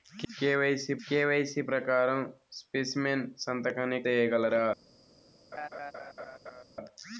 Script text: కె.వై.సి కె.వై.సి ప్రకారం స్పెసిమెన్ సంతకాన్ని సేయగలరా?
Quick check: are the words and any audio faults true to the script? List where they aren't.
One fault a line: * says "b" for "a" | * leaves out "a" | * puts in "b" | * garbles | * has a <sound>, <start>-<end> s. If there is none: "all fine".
* has a laugh, 5.5-6.6 s